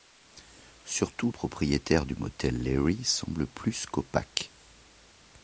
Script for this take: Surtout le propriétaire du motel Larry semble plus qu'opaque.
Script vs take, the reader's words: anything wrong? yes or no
yes